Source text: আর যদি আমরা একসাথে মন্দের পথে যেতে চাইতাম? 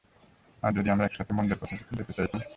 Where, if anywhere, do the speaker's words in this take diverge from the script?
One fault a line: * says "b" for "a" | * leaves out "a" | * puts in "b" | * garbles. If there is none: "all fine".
all fine